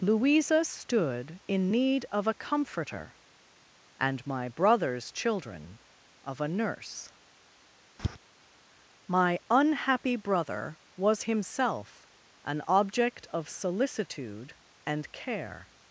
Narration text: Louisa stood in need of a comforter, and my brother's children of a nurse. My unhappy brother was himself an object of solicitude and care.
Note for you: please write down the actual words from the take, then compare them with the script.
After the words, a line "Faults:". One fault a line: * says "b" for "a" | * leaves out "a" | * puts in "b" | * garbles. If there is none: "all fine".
Louisa stood in need of a comforter, and my brother's children of a nurse. My unhappy brother was himself an object of solicitude and care.
Faults:
all fine